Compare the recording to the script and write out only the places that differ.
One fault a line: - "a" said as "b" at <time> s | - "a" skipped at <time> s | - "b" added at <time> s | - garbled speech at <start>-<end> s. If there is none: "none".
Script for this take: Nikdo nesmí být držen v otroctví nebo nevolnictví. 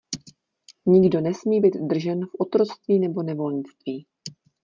none